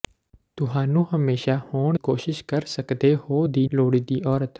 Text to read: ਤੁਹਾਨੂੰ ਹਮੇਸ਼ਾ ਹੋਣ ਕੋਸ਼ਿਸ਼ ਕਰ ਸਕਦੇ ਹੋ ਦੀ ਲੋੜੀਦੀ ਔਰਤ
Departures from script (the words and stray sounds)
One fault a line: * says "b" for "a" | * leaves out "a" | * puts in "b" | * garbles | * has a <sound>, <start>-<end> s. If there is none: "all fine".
all fine